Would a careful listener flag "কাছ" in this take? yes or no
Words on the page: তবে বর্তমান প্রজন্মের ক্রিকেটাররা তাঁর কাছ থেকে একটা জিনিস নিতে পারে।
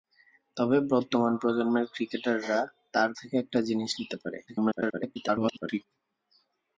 yes